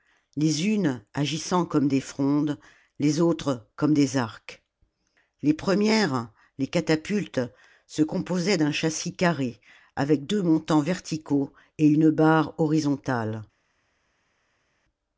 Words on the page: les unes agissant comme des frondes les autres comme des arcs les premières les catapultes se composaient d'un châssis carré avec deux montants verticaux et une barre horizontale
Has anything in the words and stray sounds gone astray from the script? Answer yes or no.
no